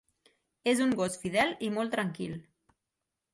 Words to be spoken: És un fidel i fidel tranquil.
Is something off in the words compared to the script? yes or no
yes